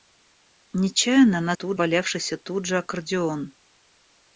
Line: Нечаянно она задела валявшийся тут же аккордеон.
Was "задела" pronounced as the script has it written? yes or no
no